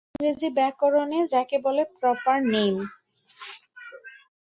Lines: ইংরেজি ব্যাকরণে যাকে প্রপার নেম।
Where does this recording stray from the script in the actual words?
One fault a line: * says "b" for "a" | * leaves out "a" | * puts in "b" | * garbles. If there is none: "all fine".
* puts in "বলে"